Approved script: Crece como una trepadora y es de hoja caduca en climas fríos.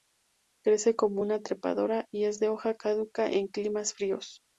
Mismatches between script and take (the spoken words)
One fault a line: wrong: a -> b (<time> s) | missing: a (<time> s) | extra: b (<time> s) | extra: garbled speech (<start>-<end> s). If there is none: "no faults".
no faults